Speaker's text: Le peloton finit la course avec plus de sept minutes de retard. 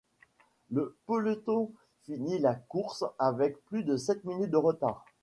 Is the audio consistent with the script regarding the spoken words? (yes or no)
yes